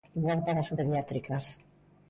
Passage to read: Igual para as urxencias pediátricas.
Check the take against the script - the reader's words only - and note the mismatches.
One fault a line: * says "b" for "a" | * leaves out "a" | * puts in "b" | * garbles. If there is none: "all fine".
* leaves out "urxencias"